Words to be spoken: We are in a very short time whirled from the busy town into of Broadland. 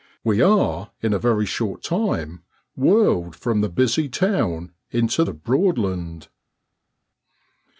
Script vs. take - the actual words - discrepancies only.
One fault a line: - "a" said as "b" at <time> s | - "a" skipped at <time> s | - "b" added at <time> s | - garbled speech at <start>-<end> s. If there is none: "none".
none